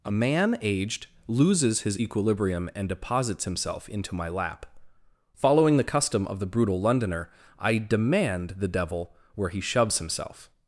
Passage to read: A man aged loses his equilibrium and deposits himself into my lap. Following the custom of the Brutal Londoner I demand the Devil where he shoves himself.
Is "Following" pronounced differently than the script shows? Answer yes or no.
no